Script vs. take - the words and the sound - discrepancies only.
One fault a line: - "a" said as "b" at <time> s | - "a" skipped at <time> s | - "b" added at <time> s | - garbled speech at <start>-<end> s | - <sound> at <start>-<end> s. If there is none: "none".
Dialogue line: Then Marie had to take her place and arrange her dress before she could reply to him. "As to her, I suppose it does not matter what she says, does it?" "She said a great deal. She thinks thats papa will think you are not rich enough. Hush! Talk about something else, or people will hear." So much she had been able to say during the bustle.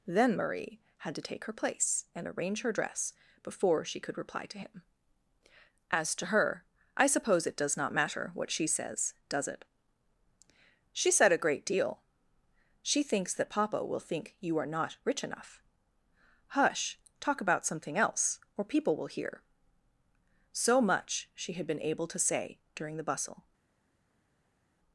- "thats" said as "that" at 13.3 s